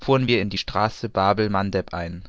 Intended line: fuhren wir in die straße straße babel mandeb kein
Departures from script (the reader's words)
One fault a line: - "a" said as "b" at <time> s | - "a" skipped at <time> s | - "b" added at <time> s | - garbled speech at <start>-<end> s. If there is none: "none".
- "straße" skipped at 1.1 s
- "kein" said as "ein" at 1.9 s